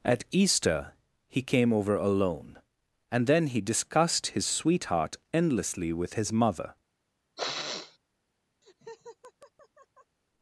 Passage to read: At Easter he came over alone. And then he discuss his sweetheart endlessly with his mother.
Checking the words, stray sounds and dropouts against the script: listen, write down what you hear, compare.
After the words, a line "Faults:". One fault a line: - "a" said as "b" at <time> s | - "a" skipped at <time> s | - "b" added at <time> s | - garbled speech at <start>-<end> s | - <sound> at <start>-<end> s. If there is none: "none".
At Easter he came over alone. And then he discussed his sweetheart endlessly with his mother.
Faults:
- "discuss" said as "discussed" at 3.6 s
- sniff at 7.4-8.0 s
- laugh at 8.6-10.2 s